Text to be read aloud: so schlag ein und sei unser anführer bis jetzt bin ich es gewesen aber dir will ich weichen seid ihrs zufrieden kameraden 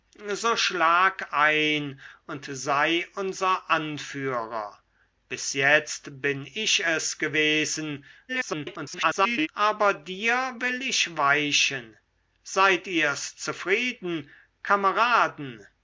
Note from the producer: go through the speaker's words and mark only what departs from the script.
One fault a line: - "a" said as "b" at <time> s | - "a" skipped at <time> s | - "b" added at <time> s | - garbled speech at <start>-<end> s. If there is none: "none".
- garbled speech at 8.3-9.5 s